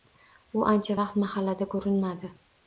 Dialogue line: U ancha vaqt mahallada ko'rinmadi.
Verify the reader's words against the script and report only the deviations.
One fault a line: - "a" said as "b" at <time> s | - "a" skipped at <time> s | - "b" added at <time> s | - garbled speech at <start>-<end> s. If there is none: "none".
none